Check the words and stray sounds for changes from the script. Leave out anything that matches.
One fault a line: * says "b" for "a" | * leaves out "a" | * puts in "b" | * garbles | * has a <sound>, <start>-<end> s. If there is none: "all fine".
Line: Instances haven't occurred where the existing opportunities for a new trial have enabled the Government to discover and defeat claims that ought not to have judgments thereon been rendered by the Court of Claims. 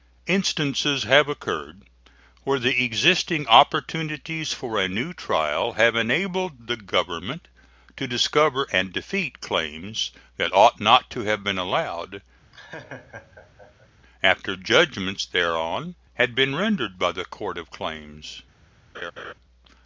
* says "have" for "haven't"
* puts in "been allowed after"
* has a laugh, 12.5-13.9 s
* puts in "had"
* has a laugh, 18.9-19.3 s